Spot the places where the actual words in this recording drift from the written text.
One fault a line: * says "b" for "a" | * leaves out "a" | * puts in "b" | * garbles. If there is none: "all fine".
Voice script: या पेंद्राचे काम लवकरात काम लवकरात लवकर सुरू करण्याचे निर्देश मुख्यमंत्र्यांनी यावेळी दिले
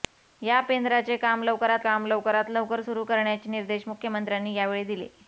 all fine